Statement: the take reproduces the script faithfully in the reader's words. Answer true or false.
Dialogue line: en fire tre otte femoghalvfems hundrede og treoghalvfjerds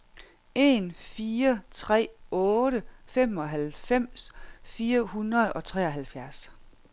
false